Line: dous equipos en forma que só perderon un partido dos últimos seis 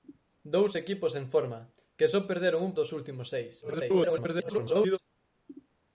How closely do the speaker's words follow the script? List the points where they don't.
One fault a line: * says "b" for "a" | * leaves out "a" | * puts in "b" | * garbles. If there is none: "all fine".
* leaves out "partido"
* garbles